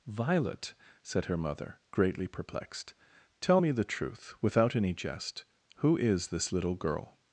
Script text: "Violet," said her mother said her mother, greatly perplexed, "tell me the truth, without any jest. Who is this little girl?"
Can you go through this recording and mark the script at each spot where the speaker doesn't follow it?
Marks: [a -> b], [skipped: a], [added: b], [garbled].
"Violet," said her mother [skipped: said her mother,] greatly perplexed, "tell me the truth, without any jest. Who is this little girl?"